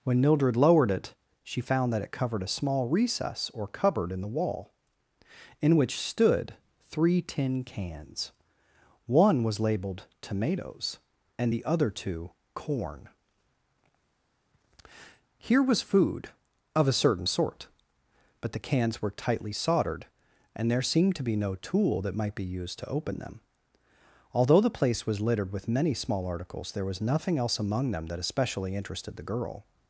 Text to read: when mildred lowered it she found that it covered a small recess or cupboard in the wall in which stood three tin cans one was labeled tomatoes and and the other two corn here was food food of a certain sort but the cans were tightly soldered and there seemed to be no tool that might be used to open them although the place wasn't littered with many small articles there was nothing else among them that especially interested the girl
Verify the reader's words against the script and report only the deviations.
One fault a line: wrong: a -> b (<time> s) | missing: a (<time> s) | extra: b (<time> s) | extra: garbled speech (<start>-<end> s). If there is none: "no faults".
missing: and (11.5 s)
missing: food (16.3 s)
wrong: wasn't -> was (25.1 s)